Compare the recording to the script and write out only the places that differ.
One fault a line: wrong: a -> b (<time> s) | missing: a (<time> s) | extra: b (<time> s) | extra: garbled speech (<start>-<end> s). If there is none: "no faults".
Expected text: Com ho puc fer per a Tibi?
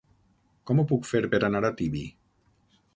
extra: anar (1.5 s)